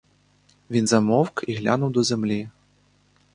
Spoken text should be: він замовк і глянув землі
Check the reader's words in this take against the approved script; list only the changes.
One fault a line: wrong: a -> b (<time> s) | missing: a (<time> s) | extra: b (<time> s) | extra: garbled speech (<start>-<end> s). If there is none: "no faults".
extra: до (1.9 s)